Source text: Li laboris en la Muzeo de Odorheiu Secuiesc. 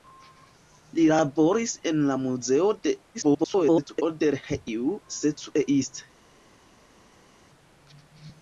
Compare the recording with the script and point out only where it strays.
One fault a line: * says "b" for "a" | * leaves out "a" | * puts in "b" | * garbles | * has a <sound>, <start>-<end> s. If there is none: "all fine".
* garbles